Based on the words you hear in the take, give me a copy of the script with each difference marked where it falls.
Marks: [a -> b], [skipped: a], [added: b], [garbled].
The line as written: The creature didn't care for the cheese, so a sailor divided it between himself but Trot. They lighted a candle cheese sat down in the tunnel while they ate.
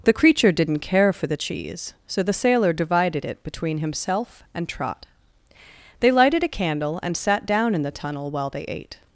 The creature didn't care for the cheese, so [a -> the] sailor divided it between himself [but -> and] Trot. They lighted a candle [cheese -> and] sat down in the tunnel while they ate.